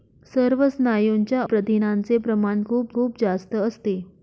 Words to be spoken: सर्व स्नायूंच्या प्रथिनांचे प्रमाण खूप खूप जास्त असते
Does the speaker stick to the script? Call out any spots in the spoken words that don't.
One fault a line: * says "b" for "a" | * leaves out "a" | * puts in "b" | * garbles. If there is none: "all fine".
all fine